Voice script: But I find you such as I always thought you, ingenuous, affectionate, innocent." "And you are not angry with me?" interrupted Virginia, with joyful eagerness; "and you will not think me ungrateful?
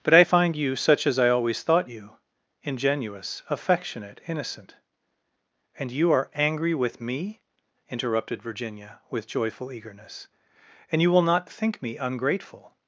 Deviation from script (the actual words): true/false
true